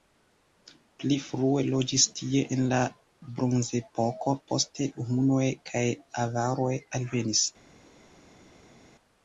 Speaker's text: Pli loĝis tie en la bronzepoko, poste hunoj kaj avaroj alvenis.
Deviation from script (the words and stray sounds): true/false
true